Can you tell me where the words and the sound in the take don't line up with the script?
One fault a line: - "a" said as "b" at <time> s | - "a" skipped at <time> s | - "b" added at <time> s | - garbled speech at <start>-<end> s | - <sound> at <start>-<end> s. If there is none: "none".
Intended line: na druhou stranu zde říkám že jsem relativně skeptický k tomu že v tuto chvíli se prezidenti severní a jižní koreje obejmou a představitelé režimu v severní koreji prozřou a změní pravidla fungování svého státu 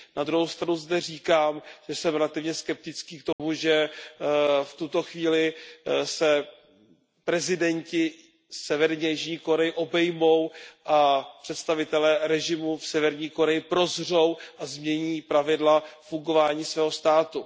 - dropout at 3.3-3.4 s